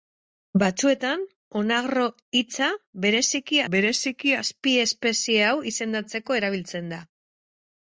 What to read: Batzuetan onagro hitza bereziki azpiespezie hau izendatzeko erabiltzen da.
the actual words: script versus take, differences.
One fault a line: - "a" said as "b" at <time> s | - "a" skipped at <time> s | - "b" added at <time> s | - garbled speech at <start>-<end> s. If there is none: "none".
- "bereziki" added at 3.7 s